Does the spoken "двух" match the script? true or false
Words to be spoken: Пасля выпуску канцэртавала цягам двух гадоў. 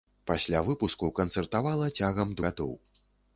false